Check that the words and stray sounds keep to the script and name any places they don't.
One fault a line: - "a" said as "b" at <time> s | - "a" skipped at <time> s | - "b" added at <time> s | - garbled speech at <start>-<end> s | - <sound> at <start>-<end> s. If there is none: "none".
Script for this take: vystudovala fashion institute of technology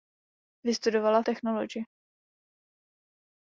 - "fashion institute of" skipped at 1.2 s